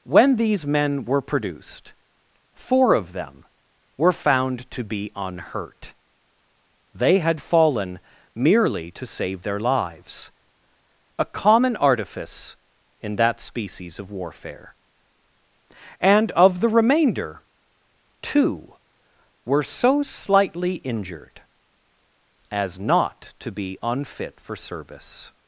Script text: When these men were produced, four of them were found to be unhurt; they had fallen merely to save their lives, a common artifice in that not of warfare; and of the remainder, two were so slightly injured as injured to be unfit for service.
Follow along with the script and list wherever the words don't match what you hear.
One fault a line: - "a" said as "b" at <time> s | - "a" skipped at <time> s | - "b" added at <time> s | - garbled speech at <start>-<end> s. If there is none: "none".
- "not" said as "species" at 13.4 s
- "injured" said as "not" at 22.8 s